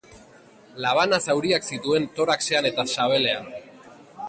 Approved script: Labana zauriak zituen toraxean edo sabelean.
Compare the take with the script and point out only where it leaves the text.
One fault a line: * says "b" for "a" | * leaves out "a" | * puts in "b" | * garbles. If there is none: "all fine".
* says "eta" for "edo"